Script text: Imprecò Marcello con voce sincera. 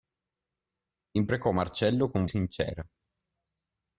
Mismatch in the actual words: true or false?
true